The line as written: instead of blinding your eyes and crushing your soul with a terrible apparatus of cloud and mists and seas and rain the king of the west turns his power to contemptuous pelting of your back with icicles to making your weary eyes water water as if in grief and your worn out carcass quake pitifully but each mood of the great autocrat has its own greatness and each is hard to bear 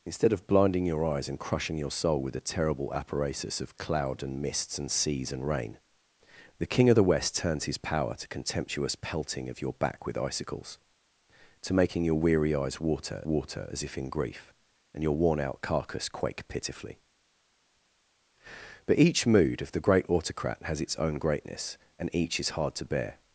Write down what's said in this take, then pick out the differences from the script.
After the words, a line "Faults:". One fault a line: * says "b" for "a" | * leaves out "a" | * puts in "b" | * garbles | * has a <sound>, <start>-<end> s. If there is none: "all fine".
instead of blinding your eyes and crushing your soul with a terrible apparatus of cloud and mists and seas and rain the king of the west turns his power to contemptuous pelting of your back with icicles to making your weary eyes water water as if in grief and your worn out carcass quake pitifully but each mood of the great autocrat has its own greatness and each is hard to bear
Faults:
all fine